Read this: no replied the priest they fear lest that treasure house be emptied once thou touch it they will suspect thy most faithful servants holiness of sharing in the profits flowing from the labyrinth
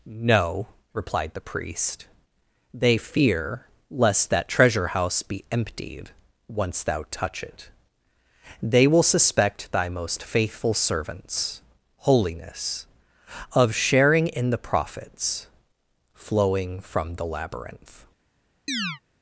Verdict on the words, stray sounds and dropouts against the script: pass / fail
fail